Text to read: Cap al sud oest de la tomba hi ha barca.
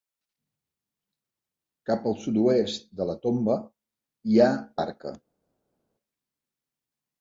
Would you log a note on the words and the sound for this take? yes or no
no